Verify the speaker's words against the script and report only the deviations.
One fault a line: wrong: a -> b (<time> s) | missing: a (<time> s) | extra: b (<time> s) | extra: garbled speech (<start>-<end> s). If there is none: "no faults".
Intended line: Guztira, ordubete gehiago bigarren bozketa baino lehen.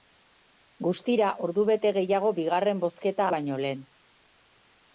no faults